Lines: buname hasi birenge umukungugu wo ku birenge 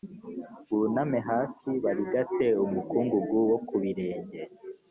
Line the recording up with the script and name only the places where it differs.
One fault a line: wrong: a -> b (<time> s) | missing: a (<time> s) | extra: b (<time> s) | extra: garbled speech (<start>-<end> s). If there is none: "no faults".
wrong: birenge -> barigate (1.8 s)